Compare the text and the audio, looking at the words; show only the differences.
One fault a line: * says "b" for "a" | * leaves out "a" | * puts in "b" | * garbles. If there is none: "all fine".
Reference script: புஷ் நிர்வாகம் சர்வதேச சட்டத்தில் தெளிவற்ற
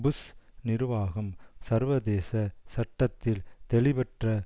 all fine